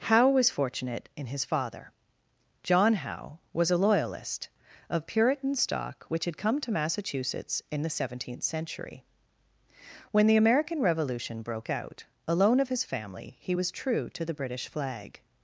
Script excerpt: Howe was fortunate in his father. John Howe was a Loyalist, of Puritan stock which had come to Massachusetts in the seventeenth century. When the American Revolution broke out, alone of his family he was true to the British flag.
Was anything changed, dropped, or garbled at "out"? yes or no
no